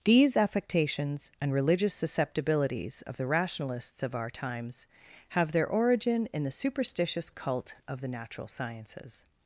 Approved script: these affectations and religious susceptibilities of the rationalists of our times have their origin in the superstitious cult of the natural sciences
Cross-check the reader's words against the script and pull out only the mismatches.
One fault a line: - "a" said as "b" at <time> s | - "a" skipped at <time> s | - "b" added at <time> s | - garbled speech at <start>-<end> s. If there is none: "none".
none